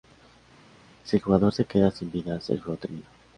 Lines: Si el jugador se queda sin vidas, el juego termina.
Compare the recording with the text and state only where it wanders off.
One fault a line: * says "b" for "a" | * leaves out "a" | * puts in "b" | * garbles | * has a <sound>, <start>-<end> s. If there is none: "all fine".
all fine